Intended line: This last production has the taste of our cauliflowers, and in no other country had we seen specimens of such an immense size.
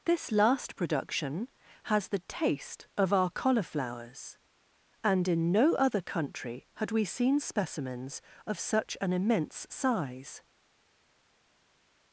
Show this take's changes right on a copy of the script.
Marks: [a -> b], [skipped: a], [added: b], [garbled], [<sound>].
This last production has the taste of our cauliflowers, and in no other country had we seen specimens of such an immense size.